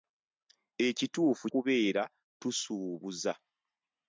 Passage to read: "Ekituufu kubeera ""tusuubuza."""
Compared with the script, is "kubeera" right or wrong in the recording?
right